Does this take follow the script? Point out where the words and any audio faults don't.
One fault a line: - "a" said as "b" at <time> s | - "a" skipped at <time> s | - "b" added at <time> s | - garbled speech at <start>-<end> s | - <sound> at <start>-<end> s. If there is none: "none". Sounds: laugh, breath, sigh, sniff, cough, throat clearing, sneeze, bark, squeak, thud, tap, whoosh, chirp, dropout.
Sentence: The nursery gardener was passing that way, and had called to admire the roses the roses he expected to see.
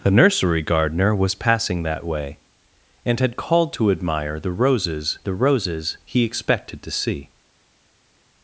none